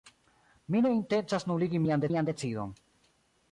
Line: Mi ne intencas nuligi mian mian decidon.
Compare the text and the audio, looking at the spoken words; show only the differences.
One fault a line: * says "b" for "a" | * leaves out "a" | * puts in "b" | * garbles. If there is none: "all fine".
all fine